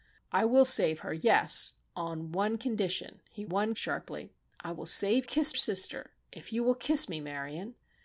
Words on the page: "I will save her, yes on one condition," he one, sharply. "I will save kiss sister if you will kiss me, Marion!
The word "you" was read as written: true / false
true